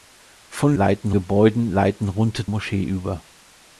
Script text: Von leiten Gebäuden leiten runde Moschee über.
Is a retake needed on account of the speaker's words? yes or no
no